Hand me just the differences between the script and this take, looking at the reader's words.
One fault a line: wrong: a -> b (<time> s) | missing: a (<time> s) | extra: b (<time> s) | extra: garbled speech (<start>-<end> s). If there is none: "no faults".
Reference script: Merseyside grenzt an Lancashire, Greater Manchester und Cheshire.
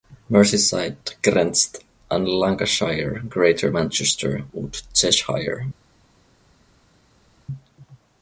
no faults